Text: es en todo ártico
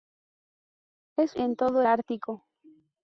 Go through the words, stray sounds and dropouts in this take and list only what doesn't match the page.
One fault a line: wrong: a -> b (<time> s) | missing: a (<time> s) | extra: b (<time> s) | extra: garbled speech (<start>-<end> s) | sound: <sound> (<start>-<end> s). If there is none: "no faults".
no faults